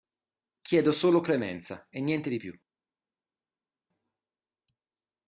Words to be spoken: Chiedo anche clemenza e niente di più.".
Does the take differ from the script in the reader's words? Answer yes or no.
yes